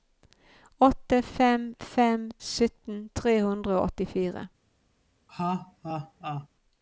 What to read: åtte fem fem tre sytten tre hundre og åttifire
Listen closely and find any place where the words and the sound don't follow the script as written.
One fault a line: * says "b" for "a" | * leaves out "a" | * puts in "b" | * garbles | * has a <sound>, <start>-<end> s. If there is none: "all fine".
* leaves out "tre"
* has a laugh, 5.3-6.5 s